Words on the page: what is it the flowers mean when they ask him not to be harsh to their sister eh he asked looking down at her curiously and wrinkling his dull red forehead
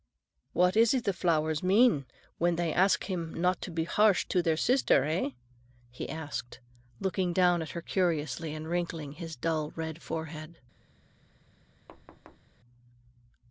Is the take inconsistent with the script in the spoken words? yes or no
no